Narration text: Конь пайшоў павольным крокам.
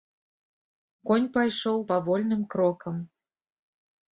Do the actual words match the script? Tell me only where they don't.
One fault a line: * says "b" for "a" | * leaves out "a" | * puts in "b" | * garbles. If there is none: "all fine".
all fine